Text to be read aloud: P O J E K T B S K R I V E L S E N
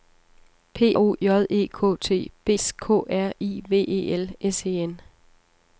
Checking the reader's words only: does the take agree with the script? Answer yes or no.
yes